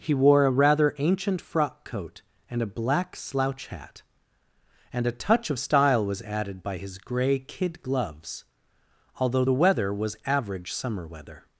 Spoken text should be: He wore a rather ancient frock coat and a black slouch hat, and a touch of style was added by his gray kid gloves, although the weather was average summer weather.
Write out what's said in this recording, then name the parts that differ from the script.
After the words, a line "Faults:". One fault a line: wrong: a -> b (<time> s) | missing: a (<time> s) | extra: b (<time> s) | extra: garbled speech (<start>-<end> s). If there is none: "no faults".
He wore a rather ancient frock coat and a black slouch hat, and a touch of style was added by his gray kid gloves, although the weather was average summer weather.
Faults:
no faults